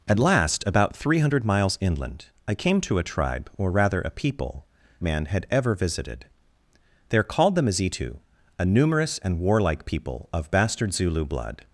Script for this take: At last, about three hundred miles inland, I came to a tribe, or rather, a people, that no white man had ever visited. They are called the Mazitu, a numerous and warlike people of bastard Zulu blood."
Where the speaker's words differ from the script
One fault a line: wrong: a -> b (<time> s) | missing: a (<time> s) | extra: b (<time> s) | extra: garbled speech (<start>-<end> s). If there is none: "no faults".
missing: that no white (4.7 s)